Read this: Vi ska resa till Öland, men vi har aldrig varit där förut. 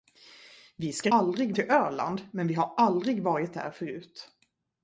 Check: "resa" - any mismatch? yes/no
yes